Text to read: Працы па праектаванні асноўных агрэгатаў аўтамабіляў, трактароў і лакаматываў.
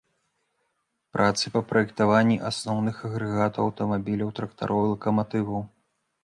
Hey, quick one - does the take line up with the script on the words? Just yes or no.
yes